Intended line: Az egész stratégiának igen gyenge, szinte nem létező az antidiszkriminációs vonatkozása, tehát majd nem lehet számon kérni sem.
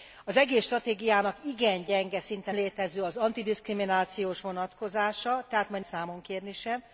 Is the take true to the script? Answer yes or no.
no